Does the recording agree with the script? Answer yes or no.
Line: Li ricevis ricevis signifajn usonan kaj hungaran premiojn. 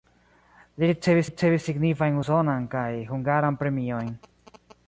yes